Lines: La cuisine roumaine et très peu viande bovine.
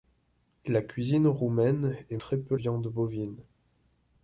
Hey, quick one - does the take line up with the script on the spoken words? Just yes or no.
yes